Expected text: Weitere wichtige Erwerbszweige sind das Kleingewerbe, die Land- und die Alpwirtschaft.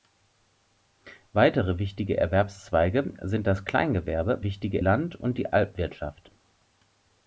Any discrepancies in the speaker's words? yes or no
yes